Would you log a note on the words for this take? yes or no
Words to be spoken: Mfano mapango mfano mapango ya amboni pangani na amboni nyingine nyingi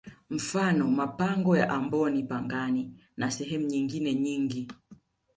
yes